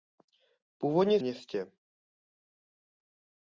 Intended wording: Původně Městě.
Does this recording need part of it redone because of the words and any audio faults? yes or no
no